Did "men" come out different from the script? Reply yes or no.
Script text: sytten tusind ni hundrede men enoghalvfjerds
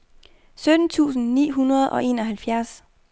yes